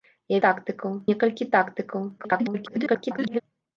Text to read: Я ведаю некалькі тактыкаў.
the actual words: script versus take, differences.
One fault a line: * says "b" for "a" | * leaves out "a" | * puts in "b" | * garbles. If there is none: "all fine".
* says "тактыкаў" for "ведаю"
* garbles